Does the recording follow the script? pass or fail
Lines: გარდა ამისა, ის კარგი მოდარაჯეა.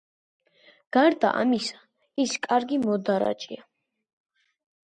pass